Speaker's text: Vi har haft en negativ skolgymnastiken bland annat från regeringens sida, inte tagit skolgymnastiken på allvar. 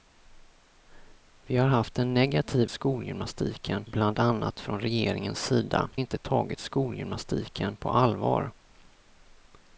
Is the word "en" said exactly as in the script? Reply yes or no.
yes